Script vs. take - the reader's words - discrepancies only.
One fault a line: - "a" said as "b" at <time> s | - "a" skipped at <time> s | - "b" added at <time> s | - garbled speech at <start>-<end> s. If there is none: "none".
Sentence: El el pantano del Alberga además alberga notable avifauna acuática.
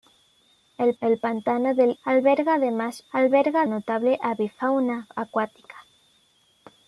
none